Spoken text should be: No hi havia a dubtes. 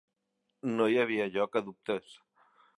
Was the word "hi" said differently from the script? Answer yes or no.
no